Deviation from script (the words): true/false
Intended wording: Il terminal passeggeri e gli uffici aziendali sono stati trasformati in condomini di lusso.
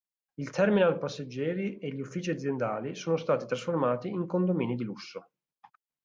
false